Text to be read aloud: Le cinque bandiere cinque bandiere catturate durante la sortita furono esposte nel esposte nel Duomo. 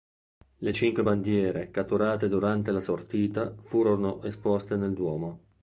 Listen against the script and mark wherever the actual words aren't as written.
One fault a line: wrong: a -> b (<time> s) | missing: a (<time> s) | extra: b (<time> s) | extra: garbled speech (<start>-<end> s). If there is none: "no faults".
missing: cinque bandiere (1.7 s)
missing: esposte nel (4.9 s)